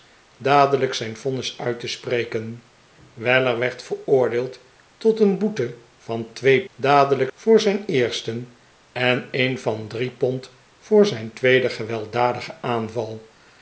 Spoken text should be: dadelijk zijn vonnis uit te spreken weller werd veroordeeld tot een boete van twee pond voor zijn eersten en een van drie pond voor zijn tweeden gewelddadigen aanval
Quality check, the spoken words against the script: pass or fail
fail